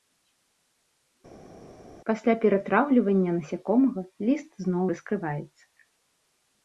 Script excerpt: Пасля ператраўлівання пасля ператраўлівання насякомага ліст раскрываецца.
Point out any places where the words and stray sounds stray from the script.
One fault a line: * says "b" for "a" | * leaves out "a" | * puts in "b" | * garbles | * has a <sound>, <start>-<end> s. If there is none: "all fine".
* leaves out "пасля ператраўлівання"
* puts in "зноў"